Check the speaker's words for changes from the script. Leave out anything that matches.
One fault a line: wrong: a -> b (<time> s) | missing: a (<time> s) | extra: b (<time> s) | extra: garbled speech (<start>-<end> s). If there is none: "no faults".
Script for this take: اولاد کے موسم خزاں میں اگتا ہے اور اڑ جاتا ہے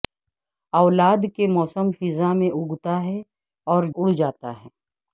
no faults